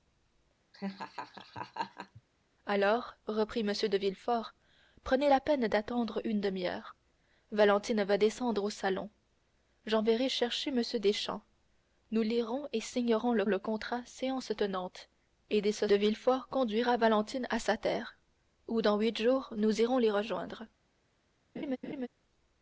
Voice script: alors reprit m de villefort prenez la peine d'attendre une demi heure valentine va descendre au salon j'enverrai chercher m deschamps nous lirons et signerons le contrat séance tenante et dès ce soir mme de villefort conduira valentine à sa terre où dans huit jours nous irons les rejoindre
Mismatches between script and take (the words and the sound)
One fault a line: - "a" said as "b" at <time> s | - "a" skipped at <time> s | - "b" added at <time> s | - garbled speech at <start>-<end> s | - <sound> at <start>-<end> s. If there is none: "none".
- laugh at 0.7-2.2 s
- "le" added at 13.4 s
- "soir mme" skipped at 15.9 s
- laugh at 21.6-22.1 s